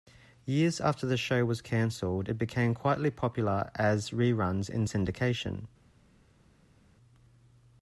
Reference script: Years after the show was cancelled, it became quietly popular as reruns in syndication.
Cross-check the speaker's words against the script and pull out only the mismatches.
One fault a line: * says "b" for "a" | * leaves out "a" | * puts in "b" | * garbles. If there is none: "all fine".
all fine